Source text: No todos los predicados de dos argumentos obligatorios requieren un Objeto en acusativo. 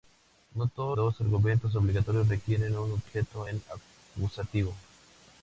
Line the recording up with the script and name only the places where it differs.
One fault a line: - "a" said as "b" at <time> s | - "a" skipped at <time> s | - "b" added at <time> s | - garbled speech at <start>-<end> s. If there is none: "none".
- "los predicados de" skipped at 1.0 s